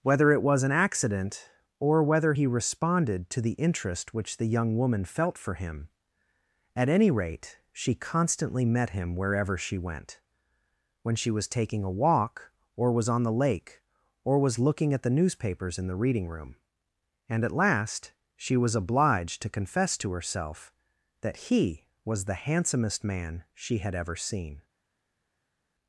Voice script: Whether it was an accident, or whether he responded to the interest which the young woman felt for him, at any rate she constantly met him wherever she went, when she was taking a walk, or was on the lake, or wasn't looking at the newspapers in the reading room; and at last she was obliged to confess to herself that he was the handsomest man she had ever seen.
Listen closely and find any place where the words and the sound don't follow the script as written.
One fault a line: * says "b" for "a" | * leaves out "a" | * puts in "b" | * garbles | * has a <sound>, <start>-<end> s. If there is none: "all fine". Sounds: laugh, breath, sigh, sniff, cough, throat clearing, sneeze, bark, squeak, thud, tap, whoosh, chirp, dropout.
* says "was" for "wasn't"